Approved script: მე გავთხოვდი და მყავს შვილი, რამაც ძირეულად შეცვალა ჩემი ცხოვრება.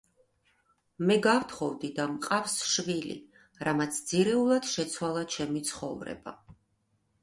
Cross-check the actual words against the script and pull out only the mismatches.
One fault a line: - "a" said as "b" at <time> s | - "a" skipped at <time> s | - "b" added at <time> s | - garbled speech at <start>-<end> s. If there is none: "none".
none